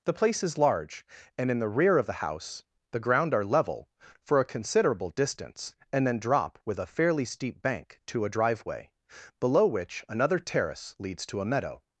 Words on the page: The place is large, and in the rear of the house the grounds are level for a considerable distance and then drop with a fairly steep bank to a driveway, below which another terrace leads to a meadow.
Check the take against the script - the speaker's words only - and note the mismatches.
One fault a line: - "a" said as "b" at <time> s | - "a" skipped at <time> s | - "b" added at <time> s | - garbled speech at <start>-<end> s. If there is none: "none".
- "grounds" said as "ground" at 3.0 s